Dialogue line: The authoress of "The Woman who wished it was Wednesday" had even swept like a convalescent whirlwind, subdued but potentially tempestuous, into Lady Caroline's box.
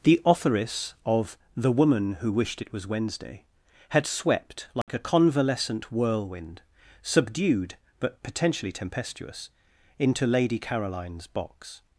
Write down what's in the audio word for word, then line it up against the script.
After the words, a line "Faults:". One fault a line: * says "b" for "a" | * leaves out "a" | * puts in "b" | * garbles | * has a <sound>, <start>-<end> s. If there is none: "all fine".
The authoress of "The Woman who wished it was Wednesday" had swept like a convalescent whirlwind, subdued but potentially tempestuous, into Lady Caroline's box.
Faults:
* leaves out "even"
* has a dropout, 4.8-4.9 s